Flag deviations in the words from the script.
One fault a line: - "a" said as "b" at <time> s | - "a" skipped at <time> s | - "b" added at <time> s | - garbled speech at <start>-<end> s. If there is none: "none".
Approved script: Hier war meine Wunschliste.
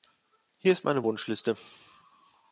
- "war" said as "ist" at 0.7 s